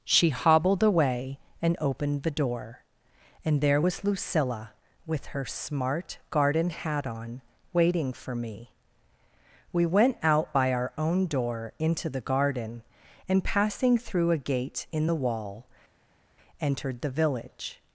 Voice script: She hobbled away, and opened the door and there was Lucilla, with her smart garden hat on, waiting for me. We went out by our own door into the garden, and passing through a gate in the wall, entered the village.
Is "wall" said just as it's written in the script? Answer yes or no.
yes